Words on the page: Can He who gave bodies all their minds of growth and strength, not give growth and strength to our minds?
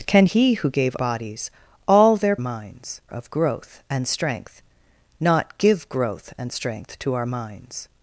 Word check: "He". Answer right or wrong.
right